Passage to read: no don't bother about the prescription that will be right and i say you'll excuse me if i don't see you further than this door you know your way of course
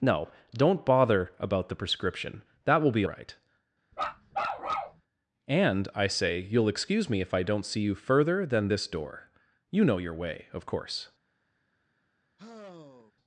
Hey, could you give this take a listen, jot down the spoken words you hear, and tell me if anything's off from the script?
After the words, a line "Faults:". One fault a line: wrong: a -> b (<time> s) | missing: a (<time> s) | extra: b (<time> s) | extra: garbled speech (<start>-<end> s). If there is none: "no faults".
no don't bother about the prescription that will be right and i say you'll excuse me if i don't see you further than this door you know your way of course
Faults:
no faults